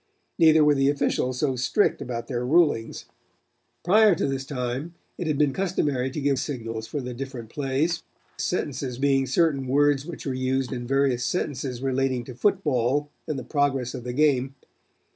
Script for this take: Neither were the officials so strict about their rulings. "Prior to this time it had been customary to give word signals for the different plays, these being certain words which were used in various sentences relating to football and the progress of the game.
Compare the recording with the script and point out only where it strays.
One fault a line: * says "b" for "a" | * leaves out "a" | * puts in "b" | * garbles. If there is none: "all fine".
* leaves out "word"
* says "sentences" for "these"